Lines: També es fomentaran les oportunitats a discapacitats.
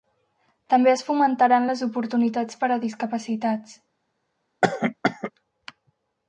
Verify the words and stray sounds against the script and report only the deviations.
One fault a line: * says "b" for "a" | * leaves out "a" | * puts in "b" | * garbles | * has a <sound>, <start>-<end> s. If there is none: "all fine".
* puts in "per"
* has a cough, 4.6-5.3 s